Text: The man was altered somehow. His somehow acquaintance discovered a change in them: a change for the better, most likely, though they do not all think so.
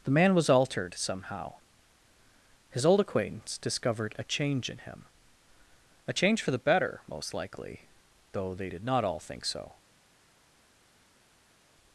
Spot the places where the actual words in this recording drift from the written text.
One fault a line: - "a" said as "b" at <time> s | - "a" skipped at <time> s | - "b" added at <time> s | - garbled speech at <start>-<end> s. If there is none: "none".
- "somehow" said as "old" at 2.9 s
- "them" said as "him" at 4.8 s
- "do" said as "did" at 8.7 s